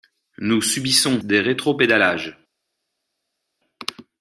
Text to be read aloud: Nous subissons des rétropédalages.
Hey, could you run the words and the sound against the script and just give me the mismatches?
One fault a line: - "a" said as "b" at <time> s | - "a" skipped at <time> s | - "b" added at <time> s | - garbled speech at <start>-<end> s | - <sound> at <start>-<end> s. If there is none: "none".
none